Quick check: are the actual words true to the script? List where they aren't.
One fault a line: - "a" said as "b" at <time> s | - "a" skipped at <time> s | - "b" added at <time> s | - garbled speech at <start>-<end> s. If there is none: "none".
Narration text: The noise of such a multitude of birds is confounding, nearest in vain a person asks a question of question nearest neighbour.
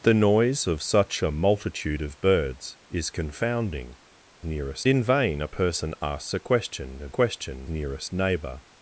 none